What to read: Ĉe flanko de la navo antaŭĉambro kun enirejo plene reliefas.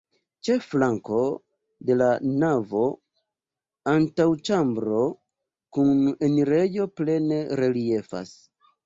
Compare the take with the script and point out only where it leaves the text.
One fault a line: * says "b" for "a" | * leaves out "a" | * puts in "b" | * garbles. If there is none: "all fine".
all fine